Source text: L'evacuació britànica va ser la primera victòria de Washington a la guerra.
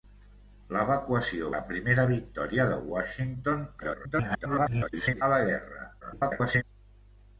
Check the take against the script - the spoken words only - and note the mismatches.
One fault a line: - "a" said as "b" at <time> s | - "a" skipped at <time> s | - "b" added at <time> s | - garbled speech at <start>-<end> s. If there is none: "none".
- "britànica va ser" skipped at 1.5 s
- garbled speech at 3.8-5.2 s
- garbled speech at 6.0-6.6 s